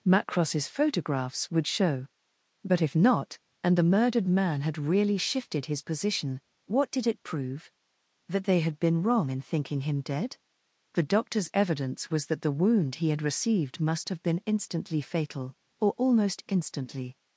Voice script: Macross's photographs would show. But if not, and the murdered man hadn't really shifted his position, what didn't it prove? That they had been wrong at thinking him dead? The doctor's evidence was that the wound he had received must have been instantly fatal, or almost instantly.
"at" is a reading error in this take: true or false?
true